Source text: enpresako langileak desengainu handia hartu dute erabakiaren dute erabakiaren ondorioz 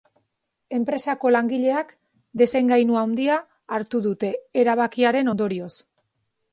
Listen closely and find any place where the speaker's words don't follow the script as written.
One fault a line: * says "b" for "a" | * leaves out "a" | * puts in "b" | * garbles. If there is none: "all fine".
* leaves out "dute erabakiaren"